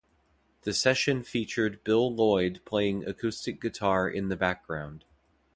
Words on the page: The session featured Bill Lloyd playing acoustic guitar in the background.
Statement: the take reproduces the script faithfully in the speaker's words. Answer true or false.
true